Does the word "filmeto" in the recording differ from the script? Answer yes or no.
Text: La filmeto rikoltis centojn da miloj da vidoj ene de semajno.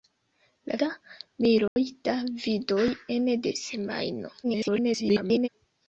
yes